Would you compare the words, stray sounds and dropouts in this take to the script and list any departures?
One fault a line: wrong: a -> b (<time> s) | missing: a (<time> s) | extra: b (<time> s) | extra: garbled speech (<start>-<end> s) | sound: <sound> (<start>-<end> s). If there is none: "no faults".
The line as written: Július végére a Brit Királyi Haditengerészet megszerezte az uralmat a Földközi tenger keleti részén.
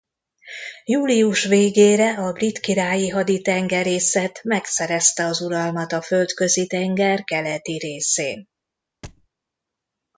sound: thud (9.0-9.3 s)